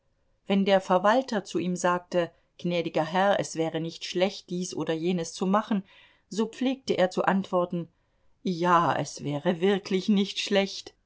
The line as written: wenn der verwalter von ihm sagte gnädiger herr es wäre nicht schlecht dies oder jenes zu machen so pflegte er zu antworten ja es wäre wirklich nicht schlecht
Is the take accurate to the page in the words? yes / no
no